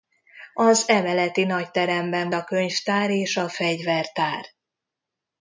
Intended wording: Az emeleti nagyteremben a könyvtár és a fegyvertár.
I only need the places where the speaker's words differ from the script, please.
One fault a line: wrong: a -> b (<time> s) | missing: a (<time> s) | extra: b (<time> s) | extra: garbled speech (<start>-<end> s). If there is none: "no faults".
no faults